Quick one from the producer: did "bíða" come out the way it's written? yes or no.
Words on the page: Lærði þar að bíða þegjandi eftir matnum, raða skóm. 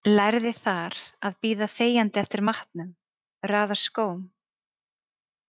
yes